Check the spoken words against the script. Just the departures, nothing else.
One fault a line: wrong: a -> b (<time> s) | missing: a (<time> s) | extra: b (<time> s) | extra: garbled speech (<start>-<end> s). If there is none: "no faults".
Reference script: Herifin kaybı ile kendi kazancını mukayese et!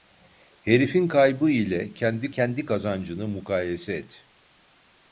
extra: kendi (2.3 s)